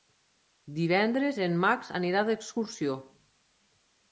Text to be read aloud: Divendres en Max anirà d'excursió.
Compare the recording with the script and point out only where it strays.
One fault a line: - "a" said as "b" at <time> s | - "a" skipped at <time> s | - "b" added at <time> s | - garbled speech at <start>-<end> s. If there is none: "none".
none